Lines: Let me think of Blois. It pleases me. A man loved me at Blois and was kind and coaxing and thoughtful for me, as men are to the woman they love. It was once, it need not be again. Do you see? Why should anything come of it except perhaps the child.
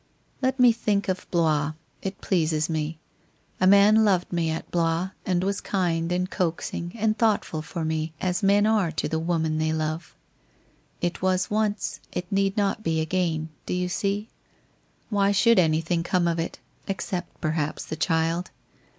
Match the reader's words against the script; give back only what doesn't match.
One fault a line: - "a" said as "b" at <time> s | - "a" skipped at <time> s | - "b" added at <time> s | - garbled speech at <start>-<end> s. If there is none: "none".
none